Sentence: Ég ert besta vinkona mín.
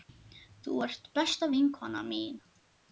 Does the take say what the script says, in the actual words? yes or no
no